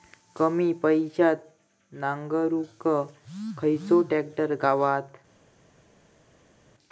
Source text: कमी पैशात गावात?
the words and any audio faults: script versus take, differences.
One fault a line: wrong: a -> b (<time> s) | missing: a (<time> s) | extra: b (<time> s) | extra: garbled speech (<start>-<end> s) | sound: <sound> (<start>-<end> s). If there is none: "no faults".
extra: नांगरुक खयचो ट्रॅक्टर (1.9 s)